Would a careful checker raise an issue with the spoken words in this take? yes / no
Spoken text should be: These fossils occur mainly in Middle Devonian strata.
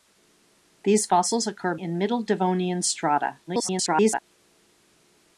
yes